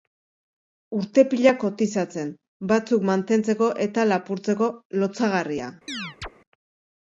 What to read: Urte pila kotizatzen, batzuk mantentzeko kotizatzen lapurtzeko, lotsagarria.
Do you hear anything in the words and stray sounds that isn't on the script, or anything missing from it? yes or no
yes